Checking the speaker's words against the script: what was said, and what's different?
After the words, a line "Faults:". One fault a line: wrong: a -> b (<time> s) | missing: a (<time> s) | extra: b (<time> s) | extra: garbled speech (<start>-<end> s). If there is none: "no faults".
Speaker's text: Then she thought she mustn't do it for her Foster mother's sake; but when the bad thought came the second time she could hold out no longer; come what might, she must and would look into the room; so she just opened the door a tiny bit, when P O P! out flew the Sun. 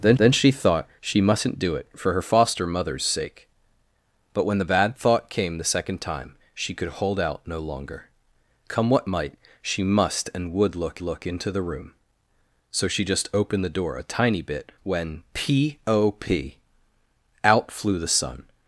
Then then she thought she mustn't do it for her Foster mother's sake; but when the bad thought came the second time she could hold out no longer; come what might, she must and would look look into the room; so she just opened the door a tiny bit, when P O P! out flew the Sun.
Faults:
extra: then (0.2 s)
extra: look (11.0 s)